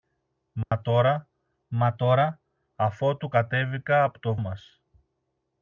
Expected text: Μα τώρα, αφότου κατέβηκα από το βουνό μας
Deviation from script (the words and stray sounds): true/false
true